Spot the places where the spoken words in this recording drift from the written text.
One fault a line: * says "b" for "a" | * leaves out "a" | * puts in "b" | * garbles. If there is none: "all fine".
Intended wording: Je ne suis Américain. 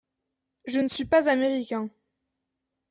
* puts in "pas"